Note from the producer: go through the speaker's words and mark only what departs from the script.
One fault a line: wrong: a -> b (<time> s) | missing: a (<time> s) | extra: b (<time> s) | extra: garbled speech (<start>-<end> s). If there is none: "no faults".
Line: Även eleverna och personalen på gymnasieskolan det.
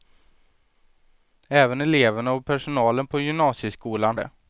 no faults